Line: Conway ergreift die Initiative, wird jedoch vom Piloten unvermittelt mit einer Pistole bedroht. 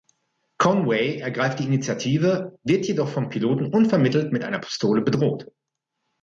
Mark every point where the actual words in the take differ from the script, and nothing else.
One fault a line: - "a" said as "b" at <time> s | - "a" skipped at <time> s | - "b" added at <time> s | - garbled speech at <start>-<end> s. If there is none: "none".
none